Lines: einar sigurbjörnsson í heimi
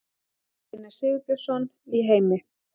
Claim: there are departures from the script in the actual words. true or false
false